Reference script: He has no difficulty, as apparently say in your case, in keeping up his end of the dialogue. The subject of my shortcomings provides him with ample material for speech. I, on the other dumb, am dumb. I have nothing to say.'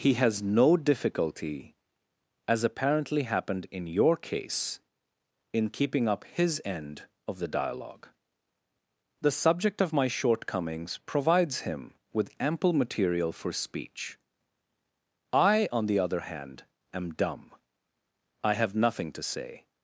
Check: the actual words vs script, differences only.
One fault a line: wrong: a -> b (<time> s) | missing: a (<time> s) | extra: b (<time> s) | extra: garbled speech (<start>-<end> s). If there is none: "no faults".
wrong: say -> happened (3.3 s)
wrong: dumb -> hand (16.2 s)